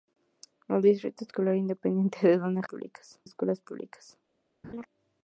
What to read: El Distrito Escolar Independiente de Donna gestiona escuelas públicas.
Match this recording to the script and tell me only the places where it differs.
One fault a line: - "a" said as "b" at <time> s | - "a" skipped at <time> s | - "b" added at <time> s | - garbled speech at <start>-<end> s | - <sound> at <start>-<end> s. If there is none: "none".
- "gestiona" said as "públicas" at 2.6 s
- laugh at 4.6-4.9 s